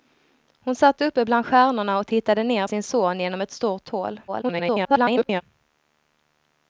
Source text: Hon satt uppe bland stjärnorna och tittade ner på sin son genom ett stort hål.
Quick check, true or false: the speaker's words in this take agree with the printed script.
false